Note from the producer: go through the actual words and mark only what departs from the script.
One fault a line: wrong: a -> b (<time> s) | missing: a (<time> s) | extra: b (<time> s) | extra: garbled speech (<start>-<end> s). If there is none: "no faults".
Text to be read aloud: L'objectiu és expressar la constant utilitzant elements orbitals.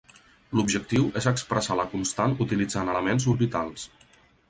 no faults